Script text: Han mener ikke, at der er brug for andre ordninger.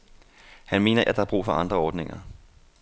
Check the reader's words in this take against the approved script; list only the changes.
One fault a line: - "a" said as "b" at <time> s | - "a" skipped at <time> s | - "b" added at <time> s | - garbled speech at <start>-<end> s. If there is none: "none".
- "ikke" skipped at 1.0 s